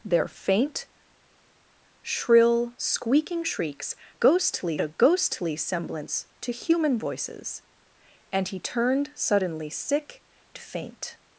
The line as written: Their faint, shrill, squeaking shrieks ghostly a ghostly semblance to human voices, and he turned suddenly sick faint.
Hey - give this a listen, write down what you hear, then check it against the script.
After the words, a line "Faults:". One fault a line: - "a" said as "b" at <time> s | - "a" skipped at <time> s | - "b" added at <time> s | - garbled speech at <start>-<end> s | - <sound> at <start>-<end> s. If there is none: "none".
Their faint, shrill, squeaking shrieks ghostly a ghostly semblance to human voices, and he turned suddenly sick faint.
Faults:
none